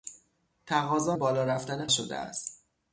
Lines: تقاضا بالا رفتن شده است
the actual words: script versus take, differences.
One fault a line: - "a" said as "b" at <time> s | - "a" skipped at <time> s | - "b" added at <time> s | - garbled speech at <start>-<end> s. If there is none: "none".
none